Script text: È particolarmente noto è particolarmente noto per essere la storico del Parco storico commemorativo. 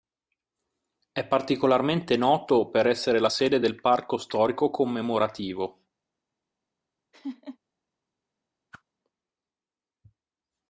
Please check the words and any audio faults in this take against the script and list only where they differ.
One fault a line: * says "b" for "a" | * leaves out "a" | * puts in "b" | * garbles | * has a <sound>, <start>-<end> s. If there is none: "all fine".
* leaves out "è particolarmente noto"
* says "sede" for "storico"
* has a laugh, 7.1-7.6 s
* has a whoosh, 8.7-8.8 s